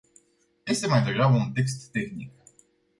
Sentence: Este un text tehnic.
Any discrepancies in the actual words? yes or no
yes